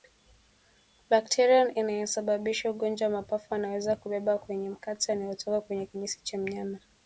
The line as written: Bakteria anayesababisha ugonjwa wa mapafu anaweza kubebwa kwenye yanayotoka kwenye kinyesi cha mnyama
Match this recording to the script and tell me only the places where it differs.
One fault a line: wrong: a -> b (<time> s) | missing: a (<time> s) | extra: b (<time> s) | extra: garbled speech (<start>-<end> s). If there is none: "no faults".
extra: mate (4.7 s)